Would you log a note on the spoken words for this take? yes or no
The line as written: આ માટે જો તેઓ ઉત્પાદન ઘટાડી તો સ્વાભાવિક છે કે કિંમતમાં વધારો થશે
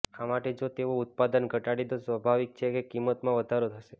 no